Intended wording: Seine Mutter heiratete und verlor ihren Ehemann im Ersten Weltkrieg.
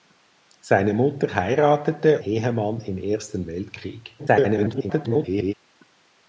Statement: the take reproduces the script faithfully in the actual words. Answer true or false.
false